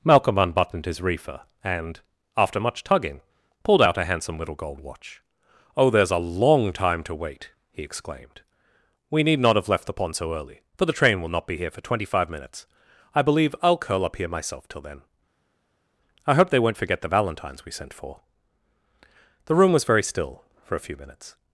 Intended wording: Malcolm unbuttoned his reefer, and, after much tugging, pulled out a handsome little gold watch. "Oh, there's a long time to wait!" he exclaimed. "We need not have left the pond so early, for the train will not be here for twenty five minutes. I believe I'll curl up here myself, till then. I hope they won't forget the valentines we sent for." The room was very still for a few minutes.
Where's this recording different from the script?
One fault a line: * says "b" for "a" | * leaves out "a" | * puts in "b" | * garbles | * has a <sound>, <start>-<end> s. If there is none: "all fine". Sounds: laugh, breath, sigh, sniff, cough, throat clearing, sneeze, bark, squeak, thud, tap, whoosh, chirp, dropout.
all fine